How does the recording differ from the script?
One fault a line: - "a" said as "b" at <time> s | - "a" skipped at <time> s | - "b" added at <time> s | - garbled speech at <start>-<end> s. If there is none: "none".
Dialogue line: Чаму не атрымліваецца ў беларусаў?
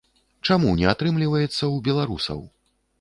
none